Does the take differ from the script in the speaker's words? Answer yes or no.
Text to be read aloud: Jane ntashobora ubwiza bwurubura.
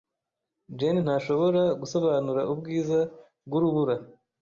yes